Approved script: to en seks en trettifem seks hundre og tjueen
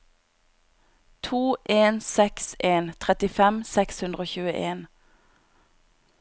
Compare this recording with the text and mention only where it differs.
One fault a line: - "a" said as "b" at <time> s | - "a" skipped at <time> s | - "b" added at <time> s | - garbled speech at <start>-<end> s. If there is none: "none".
none